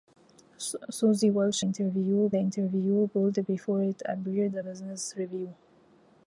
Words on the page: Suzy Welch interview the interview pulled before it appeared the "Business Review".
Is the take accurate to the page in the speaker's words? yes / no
yes